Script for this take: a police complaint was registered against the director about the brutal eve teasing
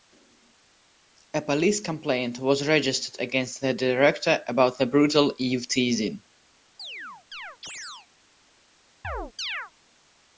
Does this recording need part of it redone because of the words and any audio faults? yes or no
yes